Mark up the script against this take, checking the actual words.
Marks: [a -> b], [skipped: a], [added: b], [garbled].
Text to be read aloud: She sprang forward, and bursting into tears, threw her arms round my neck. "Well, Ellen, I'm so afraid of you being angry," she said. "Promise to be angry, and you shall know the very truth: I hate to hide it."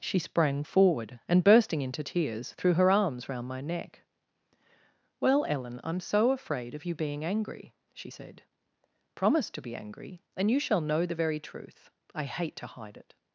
She sprang forward, and bursting into tears, threw her arms round my neck. "Well, Ellen, I'm so afraid of you being angry," she said. "Promise to be angry, and you shall know the very truth: I hate to hide it."